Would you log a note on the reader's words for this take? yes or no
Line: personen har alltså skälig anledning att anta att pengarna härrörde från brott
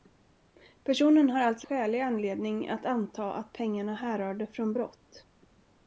no